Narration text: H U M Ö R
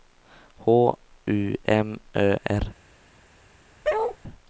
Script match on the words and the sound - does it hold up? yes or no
no